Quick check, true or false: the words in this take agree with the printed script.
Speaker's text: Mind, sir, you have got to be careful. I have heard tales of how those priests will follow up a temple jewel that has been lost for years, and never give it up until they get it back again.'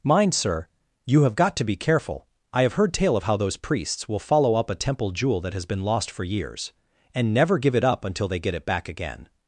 false